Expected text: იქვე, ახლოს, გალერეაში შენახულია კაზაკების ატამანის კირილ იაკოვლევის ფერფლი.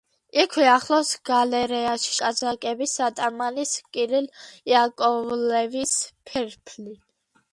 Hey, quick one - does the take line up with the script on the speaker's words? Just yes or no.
no